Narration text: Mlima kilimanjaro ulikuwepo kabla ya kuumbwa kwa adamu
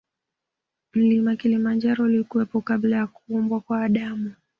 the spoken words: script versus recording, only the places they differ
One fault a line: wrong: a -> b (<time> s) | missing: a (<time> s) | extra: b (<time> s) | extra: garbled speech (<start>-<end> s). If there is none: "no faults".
no faults